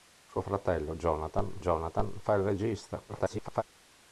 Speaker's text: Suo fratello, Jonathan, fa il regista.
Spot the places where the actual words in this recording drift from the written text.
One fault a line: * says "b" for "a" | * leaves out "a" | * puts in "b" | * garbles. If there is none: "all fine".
* puts in "Jonathan"
* garbles